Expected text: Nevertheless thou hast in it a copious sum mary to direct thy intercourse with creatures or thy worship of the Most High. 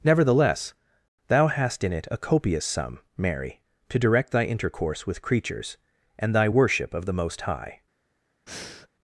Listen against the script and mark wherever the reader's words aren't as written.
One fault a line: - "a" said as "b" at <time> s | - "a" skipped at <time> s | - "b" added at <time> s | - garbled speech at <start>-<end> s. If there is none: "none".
- "or" said as "and" at 6.2 s